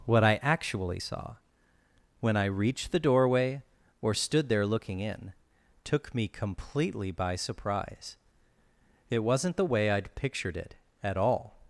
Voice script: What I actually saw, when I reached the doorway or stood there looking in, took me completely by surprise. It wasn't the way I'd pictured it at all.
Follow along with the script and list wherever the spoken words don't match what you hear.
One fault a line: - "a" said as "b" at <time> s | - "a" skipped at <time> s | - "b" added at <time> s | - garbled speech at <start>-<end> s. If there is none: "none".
none